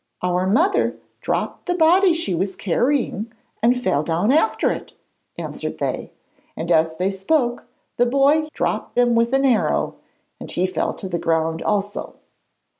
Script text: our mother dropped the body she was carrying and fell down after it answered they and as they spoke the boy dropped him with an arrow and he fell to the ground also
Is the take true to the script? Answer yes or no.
yes